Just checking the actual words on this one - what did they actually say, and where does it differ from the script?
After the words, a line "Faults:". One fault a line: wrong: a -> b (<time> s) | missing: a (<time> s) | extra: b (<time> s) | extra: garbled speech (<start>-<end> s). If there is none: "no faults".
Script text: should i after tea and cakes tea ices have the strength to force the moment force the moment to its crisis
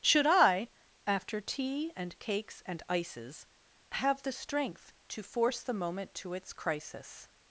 should i after tea and cakes and ices have the strength to force the moment to its crisis
Faults:
wrong: tea -> and (2.6 s)
missing: force the moment (6.2 s)